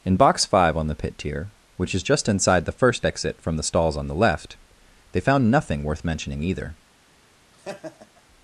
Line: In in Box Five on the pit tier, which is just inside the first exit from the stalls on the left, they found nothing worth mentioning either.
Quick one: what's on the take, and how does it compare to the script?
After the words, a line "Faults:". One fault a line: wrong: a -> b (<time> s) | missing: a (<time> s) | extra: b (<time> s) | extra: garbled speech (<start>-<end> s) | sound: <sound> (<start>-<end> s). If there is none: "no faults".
In Box Five on the pit tier, which is just inside the first exit from the stalls on the left, they found nothing worth mentioning either.
Faults:
missing: in (0.2 s)
sound: laugh (7.5-8.2 s)